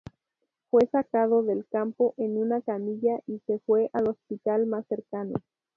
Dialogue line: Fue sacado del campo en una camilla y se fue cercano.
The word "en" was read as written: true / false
true